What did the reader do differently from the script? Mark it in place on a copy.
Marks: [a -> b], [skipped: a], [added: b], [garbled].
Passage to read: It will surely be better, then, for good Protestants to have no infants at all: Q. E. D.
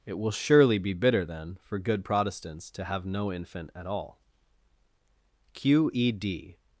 It will surely be [better, -> bitter] then, for good Protestants to have no [infants -> infant] at all: Q. E. D.